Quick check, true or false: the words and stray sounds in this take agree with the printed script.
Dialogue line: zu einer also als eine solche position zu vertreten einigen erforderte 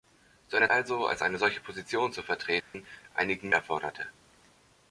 false